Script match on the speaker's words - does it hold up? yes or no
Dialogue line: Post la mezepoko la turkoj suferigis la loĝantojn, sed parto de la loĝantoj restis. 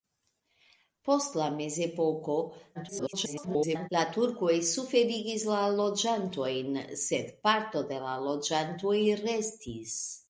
no